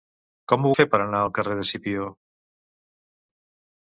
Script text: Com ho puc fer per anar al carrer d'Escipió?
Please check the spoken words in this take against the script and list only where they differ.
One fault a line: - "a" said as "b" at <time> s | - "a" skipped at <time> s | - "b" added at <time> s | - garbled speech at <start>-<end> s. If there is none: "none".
- "puc" skipped at 0.7 s